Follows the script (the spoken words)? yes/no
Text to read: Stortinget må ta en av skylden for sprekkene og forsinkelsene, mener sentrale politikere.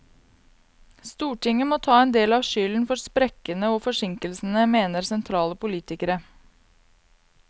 no